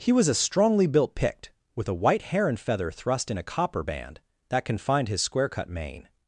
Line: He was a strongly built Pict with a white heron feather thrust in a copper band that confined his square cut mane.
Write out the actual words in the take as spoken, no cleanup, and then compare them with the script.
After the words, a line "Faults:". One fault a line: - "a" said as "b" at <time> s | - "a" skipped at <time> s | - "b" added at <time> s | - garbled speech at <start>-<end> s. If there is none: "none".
He was a strongly built Pict with a white heron feather thrust in a copper band that confined his square cut mane.
Faults:
none